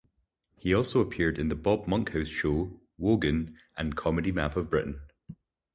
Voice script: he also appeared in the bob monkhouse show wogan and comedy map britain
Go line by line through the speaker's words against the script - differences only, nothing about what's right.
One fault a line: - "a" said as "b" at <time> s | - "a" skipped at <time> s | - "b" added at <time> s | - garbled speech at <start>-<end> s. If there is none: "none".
- "of" added at 4.5 s